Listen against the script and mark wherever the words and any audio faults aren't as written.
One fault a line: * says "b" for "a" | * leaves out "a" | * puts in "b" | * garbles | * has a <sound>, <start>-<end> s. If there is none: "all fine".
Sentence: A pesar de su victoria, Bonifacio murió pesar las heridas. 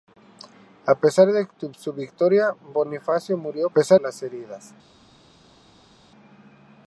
all fine